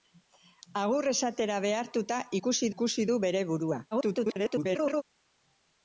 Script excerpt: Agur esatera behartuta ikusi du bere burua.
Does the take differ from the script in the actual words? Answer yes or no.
yes